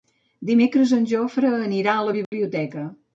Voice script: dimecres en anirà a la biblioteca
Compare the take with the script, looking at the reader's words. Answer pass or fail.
fail